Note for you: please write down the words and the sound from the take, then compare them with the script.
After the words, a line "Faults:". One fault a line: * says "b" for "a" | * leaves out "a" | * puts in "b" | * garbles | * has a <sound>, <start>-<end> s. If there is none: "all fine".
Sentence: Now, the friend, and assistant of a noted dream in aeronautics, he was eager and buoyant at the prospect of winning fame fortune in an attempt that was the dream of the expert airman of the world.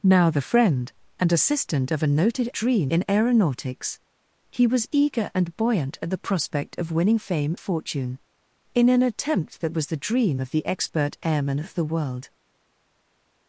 Now, the friend, and assistant of a noted dream in aeronautics, he was eager and buoyant at the prospect of winning fame fortune in an attempt that was the dream of the expert airman of the world.
Faults:
all fine